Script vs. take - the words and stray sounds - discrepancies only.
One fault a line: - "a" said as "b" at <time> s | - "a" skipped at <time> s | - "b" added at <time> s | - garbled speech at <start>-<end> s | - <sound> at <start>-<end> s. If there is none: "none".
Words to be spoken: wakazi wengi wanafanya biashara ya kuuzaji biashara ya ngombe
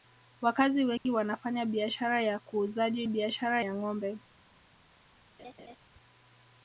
- dropout at 1.0-1.1 s
- laugh at 5.4-5.8 s